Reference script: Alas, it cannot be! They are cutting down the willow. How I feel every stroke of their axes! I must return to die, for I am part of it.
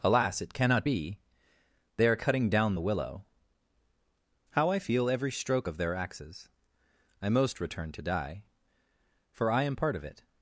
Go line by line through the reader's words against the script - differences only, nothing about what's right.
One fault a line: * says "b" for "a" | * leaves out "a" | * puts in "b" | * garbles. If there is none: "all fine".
* says "most" for "must"